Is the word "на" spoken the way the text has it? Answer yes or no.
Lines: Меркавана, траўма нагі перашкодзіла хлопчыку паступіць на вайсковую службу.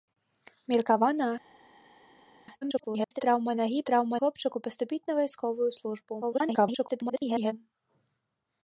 yes